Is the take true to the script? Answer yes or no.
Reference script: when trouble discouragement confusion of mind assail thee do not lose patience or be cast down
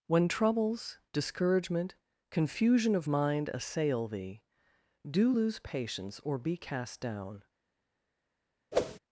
no